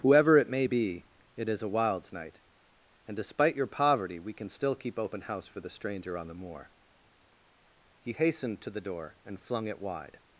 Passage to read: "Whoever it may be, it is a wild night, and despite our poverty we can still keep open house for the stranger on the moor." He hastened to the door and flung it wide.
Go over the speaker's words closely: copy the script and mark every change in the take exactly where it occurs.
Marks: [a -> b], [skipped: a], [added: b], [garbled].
"Whoever it may be, it is a [wild -> wilds] night, and despite [our -> your] poverty we can still keep open house for the stranger on the moor." He hastened to the door and flung it wide.